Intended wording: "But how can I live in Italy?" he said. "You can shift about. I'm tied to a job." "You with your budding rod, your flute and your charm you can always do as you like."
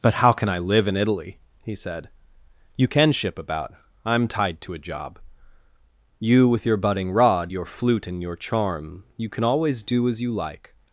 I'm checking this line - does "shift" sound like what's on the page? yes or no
no